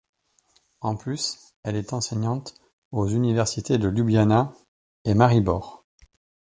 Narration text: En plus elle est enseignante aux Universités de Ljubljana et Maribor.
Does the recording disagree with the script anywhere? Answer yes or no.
no